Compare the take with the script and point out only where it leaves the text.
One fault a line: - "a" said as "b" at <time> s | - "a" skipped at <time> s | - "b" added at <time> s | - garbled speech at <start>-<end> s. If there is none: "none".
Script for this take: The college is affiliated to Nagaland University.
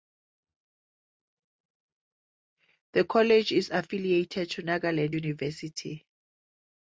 none